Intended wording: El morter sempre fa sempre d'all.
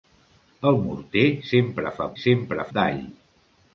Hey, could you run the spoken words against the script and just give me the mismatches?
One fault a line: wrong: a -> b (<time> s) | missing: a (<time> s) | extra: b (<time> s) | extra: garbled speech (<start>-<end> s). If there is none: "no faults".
no faults